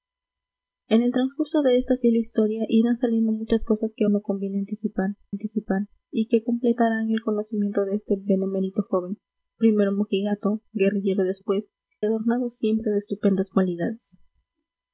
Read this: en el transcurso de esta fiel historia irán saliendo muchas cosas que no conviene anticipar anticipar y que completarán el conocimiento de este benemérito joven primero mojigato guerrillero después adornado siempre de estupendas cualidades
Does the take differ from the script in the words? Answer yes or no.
no